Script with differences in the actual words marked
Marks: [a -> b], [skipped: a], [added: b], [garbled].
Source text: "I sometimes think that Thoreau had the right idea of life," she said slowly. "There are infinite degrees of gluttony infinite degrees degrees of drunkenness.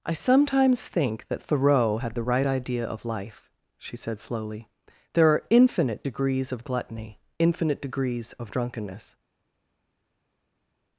"I sometimes think that Thoreau had the right idea of life," she said slowly. "There are infinite degrees of gluttony infinite degrees [skipped: degrees] of drunkenness.